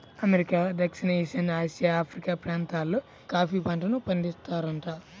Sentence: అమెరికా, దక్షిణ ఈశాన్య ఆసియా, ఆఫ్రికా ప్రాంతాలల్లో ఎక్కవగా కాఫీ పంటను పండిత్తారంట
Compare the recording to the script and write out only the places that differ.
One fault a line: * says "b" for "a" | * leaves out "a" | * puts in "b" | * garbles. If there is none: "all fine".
* leaves out "ఎక్కవగా"